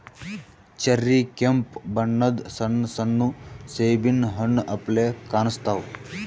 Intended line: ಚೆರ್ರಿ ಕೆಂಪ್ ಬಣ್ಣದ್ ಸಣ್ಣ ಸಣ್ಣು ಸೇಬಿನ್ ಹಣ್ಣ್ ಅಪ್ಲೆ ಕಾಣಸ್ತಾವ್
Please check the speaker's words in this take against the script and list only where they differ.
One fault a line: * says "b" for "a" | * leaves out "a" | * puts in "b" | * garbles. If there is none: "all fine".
all fine